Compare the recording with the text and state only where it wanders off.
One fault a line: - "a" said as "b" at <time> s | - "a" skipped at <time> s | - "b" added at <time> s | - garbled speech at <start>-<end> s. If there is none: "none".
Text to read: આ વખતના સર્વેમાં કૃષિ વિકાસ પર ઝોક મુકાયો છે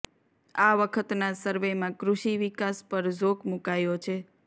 none